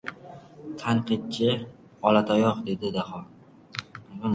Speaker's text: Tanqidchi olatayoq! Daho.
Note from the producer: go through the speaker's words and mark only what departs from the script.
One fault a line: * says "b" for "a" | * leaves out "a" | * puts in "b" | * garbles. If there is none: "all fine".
* puts in "dedi"